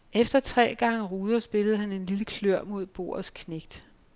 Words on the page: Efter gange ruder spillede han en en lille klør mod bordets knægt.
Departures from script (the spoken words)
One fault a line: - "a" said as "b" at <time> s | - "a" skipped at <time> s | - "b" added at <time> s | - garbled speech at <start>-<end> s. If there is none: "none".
- "tre" added at 0.4 s
- "en" skipped at 2.0 s